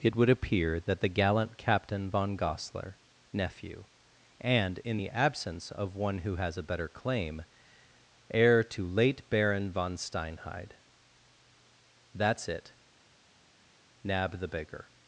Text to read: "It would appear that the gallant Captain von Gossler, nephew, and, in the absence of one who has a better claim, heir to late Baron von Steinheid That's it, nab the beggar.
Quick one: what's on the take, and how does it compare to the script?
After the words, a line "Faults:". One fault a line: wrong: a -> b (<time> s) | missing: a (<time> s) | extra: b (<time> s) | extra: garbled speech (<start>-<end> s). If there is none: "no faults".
"It would appear that the gallant Captain von Gossler, nephew, and, in the absence of one who has a better claim, heir to late Baron von Steinheid That's it, nab the beggar.
Faults:
no faults